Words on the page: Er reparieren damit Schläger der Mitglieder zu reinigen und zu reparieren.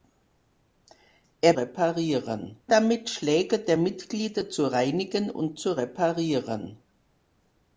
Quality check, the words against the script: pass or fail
pass